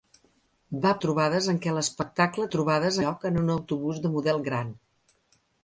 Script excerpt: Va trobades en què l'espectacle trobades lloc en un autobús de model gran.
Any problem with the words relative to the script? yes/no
no